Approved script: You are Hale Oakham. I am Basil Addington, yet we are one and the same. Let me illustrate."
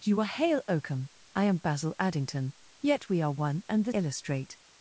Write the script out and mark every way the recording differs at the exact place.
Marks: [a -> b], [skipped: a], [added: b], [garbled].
You are Hale Oakham. I am Basil Addington, yet we are one and the [skipped: same. Let me] illustrate."